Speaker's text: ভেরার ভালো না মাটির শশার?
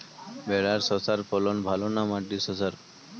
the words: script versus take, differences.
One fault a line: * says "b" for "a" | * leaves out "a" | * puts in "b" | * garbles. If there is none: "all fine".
* puts in "শশার ফলন"